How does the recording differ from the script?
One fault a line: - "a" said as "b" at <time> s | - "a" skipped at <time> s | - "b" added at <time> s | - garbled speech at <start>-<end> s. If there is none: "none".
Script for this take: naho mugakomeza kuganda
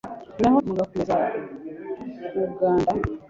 none